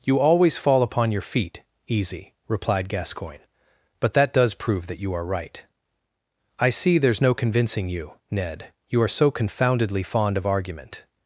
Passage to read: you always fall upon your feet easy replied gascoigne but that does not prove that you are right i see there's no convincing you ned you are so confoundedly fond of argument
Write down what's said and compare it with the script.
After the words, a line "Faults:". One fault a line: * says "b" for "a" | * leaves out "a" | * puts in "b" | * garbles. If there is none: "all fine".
you always fall upon your feet easy replied gascoigne but that does prove that you are right i see there's no convincing you ned you are so confoundedly fond of argument
Faults:
* leaves out "not"